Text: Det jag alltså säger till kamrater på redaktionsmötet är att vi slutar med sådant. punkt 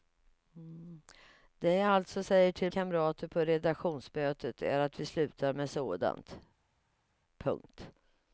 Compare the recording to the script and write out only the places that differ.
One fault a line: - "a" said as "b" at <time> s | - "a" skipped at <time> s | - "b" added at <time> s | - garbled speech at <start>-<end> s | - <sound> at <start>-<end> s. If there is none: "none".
none